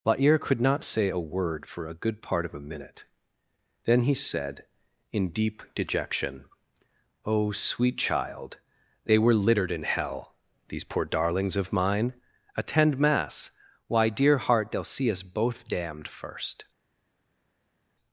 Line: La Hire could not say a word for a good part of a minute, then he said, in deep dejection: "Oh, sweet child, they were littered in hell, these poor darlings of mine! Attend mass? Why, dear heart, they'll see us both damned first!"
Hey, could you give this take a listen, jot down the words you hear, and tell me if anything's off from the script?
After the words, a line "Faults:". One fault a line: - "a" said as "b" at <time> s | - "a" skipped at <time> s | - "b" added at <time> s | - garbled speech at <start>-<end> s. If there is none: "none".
La Hire could not say a word for a good part of a minute, then he said, in deep dejection: "Oh, sweet child, they were littered in hell, these poor darlings of mine! Attend mass? Why, dear heart, they'll see us both damned first!"
Faults:
none